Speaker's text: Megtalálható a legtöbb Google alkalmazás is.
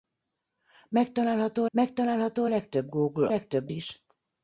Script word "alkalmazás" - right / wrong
wrong